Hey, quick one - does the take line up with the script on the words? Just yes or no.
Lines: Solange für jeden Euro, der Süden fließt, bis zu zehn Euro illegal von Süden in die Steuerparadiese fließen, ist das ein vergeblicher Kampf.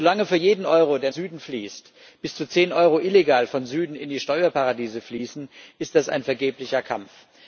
yes